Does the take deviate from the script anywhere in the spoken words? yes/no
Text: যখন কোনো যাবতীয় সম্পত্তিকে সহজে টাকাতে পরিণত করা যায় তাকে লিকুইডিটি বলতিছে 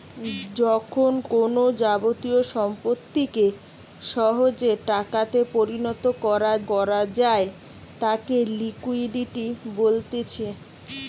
yes